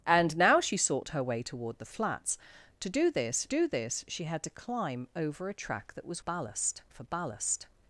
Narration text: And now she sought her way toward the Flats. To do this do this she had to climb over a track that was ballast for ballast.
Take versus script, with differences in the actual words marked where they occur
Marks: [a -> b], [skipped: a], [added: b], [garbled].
And now she sought her way toward the Flats. To do this do this she had to climb over a track that was ballast for ballast.